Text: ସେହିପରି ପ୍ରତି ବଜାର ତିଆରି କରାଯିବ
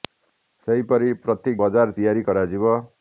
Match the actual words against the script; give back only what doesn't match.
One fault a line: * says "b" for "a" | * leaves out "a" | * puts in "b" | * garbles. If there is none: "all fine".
all fine